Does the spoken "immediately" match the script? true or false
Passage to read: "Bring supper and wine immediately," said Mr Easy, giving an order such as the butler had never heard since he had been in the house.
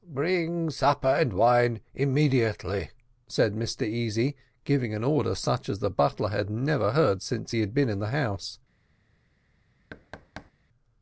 true